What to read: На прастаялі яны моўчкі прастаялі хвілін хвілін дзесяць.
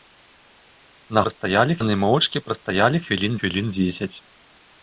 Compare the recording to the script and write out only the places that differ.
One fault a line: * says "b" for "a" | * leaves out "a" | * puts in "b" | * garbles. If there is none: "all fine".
all fine